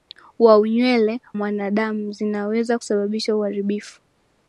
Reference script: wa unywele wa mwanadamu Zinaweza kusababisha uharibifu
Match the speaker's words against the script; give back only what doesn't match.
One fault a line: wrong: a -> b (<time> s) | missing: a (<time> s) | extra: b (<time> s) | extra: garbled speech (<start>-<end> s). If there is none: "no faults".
missing: wa (1.2 s)